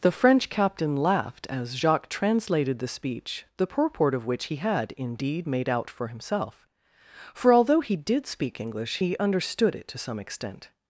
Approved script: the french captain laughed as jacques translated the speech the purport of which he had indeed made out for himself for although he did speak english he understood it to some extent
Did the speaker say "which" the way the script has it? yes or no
yes